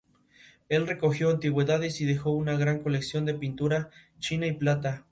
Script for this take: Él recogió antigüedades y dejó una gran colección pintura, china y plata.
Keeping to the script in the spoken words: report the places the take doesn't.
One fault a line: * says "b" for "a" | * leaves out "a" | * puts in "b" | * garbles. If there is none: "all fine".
* puts in "de"